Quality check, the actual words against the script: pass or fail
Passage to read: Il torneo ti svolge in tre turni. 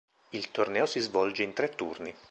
fail